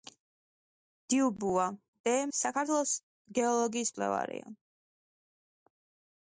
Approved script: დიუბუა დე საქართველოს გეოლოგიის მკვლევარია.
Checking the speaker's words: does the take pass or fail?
pass